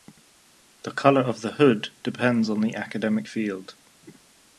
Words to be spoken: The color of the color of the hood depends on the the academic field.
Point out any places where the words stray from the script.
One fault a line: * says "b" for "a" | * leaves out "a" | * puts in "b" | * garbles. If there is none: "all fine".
* leaves out "color of the"
* leaves out "the"